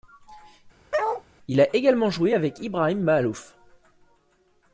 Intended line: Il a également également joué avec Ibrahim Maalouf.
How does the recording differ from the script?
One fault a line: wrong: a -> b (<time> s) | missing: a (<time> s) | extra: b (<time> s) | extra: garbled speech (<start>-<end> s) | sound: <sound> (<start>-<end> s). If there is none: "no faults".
sound: bark (0.9-1.2 s)
missing: également (2.1 s)